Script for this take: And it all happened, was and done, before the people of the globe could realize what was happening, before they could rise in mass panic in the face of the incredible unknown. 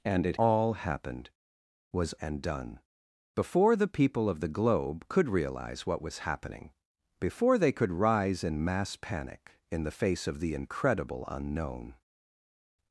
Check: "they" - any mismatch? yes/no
no